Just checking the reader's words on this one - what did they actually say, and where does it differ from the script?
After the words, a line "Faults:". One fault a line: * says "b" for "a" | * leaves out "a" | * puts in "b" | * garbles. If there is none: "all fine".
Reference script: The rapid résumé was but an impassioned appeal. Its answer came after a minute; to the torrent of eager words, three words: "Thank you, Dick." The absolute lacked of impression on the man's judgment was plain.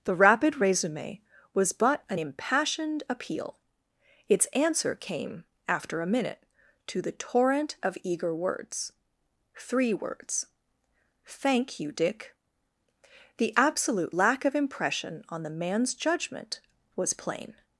The rapid résumé was but an impassioned appeal. Its answer came after a minute; to the torrent of eager words, three words: "Thank you, Dick." The absolute lack of impression on the man's judgment was plain.
Faults:
* says "lack" for "lacked"